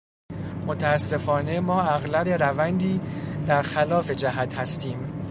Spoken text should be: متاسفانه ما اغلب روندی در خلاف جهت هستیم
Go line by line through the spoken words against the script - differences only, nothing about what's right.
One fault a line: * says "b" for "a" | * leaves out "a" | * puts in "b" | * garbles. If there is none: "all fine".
all fine